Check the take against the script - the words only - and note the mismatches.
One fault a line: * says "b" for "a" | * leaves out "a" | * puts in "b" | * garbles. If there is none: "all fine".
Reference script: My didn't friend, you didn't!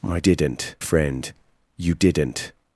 all fine